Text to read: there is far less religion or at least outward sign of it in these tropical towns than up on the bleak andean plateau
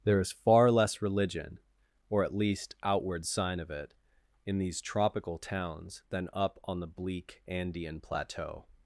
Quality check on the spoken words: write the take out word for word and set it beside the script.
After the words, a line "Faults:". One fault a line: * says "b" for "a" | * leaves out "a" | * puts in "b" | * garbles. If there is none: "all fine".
there is far less religion or at least outward sign of it in these tropical towns than up on the bleak andean plateau
Faults:
all fine